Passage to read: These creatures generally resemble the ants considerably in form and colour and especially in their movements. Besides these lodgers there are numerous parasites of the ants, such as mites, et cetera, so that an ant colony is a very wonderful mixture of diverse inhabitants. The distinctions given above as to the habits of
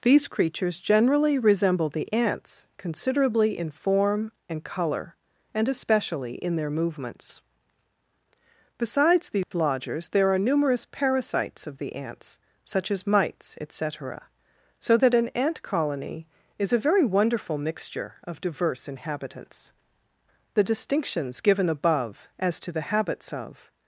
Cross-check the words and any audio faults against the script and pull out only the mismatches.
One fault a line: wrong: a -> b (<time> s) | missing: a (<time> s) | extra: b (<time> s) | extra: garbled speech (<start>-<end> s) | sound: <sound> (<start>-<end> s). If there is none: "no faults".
sound: dropout (9.4-9.5 s)